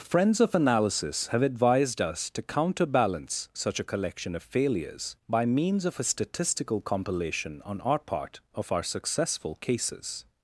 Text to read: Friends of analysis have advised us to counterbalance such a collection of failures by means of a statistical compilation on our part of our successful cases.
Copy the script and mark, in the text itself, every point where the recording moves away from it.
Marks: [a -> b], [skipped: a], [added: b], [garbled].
Friends of analysis have advised us to counterbalance such a collection of failures by means of a statistical compilation on our part of our successful cases.